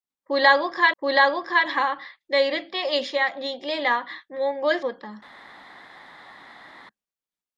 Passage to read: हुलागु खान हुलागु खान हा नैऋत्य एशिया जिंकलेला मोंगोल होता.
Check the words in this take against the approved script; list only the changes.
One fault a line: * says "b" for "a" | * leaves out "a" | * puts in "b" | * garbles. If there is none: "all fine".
all fine